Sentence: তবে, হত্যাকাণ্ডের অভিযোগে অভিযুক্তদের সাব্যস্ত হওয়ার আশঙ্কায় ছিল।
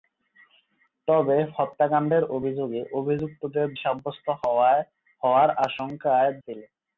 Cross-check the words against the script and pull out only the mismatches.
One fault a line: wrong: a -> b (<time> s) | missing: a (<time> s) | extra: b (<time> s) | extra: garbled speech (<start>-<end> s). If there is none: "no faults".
no faults